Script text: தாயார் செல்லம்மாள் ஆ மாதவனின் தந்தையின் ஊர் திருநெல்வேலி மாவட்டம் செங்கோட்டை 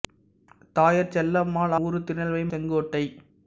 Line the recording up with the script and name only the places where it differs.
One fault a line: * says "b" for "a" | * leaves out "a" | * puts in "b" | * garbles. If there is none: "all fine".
* leaves out "ஆ மாதவனின் தந்தையின்"
* leaves out "மாவட்டம்"